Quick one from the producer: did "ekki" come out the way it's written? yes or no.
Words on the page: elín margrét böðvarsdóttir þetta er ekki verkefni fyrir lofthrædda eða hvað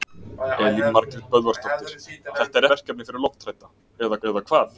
no